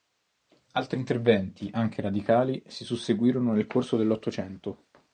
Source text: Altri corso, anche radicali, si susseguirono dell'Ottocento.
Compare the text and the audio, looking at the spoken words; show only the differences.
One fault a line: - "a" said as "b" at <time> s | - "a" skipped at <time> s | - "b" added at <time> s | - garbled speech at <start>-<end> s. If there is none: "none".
- "corso" said as "interventi" at 1.0 s
- "nel corso" added at 3.5 s